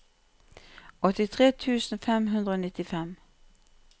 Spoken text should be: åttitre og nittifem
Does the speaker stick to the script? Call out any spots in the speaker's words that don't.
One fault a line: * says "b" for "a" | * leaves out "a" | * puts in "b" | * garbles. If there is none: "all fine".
* puts in "tusen fem hundre"